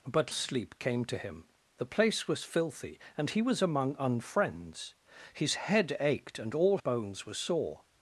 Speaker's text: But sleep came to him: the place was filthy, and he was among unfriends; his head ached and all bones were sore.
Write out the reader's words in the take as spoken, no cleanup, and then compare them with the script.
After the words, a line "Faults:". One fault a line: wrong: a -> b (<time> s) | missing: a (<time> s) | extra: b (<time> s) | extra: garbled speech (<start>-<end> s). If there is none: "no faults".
But sleep came to him: the place was filthy, and he was among unfriends; his head ached and all bones were sore.
Faults:
no faults